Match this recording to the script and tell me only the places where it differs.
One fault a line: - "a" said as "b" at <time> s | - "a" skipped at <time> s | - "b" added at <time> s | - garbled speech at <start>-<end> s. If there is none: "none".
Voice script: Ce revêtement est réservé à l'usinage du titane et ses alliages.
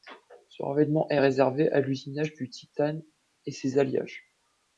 none